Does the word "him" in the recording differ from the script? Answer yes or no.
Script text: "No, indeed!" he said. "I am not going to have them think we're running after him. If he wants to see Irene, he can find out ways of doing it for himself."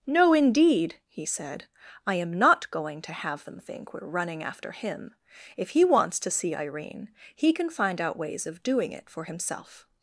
no